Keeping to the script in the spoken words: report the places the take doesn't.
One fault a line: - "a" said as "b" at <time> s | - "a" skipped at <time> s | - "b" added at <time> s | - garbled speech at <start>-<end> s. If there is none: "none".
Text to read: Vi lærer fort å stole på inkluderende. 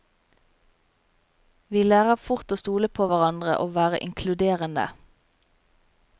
- "hverandre og være" added at 3.1 s